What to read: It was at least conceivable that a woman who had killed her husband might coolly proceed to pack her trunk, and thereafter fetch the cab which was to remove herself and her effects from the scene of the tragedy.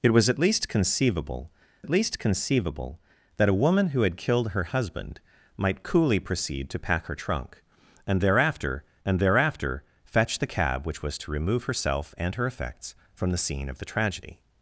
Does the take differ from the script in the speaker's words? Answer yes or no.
yes